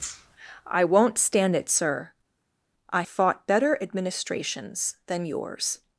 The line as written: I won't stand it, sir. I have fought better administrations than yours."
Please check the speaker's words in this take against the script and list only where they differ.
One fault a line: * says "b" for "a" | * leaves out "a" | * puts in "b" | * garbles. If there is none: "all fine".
* leaves out "have"